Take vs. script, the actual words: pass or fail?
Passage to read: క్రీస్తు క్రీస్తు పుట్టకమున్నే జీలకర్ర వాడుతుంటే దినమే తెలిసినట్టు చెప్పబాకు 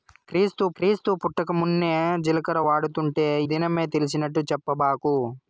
pass